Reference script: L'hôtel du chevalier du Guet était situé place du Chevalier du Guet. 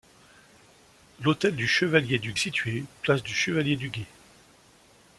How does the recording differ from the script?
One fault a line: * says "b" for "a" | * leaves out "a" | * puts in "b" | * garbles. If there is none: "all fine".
* leaves out "Guet était"